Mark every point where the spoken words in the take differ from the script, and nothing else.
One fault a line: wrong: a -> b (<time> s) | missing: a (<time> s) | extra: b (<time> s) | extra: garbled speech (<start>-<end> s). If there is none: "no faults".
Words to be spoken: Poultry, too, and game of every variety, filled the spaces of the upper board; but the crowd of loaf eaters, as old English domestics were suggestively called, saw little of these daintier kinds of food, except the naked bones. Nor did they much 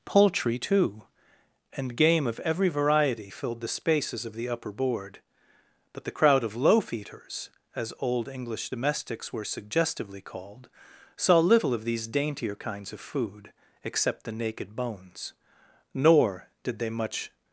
no faults